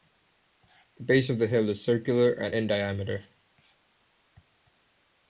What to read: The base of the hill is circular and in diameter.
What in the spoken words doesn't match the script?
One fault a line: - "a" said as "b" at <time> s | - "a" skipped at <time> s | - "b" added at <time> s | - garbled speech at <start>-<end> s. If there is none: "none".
none